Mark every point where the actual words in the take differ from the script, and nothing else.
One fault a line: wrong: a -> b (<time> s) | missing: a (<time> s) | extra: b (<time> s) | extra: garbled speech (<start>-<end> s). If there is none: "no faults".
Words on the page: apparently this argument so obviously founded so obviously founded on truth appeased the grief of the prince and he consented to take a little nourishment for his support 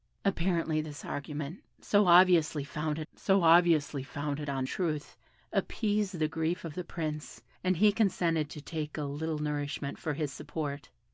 no faults